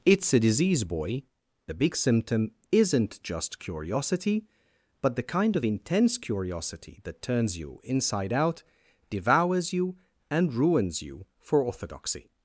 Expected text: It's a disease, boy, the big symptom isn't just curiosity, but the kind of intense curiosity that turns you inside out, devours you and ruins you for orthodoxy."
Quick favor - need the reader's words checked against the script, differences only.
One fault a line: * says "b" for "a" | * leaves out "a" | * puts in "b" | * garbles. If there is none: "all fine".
all fine